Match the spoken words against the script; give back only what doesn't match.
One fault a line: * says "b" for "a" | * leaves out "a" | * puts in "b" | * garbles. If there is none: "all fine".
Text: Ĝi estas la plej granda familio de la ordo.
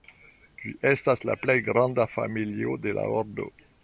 all fine